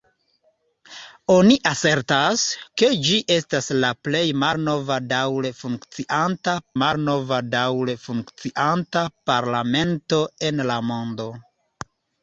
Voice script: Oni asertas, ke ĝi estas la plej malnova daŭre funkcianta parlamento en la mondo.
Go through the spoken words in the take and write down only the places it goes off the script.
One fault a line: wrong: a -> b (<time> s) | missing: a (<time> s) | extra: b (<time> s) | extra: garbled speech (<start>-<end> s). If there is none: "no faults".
extra: malnova daŭre funkcianta (6.8 s)